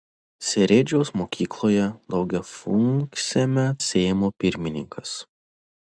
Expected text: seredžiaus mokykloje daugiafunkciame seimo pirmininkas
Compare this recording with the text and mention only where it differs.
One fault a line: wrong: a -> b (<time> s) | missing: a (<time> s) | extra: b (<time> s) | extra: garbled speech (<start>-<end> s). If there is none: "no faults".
no faults